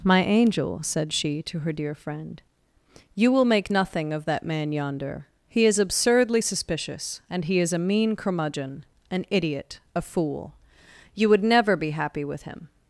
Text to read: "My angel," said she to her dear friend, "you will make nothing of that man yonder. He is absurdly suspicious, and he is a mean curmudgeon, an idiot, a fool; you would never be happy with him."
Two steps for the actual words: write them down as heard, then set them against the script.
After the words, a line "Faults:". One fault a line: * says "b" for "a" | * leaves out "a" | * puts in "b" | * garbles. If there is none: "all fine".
"My angel," said she to her dear friend, "you will make nothing of that man yonder. He is absurdly suspicious, and he is a mean curmudgeon, an idiot, a fool; you would never be happy with him."
Faults:
all fine